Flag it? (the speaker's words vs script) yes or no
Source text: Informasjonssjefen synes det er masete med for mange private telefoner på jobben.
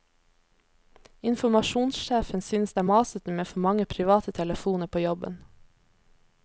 no